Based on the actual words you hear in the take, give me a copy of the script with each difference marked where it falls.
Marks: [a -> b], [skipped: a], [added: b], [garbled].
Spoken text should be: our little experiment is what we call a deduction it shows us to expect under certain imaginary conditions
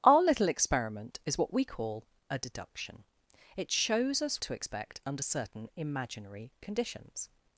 our little experiment is what we call a deduction it shows us to expect under certain imaginary conditions